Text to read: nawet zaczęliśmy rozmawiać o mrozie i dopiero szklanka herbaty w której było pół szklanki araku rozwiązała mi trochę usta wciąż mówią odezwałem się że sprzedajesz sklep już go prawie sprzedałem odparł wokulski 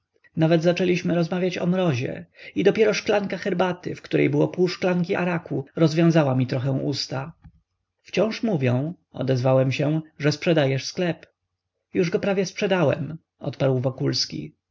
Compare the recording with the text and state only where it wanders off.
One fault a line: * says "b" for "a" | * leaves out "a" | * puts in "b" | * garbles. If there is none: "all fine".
all fine